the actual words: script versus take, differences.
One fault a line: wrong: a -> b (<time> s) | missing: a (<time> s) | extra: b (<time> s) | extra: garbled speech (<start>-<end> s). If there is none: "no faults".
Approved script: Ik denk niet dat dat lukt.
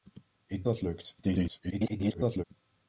missing: denk niet dat (0.7 s)
extra: garbled speech (1.2-2.4 s)